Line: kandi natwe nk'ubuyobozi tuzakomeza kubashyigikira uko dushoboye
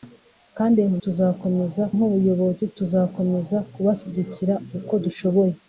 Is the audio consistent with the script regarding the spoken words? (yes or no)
no